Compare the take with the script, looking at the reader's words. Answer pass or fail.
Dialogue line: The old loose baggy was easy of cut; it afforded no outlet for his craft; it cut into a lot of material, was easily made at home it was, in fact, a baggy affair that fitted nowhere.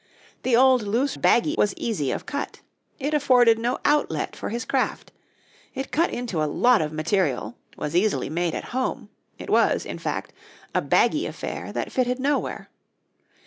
pass